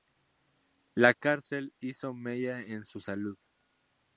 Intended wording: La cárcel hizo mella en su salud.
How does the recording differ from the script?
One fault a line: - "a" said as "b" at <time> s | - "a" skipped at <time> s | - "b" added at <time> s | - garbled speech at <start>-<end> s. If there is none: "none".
none